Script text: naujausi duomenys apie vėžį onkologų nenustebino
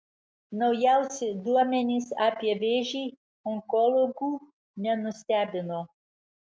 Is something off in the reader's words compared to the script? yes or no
no